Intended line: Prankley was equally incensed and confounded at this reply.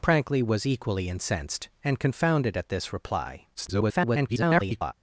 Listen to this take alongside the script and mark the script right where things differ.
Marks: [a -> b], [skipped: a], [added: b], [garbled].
Prankley was equally incensed and confounded at this reply. [garbled]